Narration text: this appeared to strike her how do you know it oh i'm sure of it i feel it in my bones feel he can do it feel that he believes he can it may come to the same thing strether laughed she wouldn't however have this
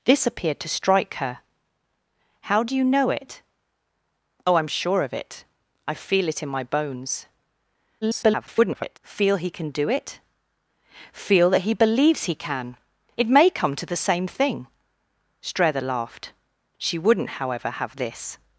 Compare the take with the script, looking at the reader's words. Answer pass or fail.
fail